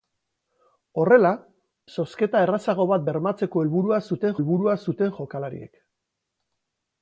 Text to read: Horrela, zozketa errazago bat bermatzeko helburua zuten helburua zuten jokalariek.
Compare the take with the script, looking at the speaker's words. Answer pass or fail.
pass